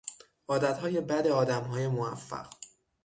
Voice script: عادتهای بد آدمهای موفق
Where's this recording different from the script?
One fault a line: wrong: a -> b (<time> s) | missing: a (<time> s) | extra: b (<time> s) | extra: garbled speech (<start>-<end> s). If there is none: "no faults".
no faults